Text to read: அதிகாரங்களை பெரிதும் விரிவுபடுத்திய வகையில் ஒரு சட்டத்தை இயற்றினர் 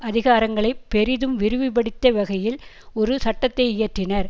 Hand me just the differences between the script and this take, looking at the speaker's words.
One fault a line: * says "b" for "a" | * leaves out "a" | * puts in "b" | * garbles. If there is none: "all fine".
all fine